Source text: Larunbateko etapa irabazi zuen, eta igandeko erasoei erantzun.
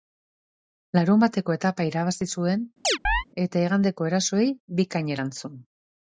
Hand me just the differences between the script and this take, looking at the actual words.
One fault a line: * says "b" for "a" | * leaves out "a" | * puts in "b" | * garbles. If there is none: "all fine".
* puts in "bikain"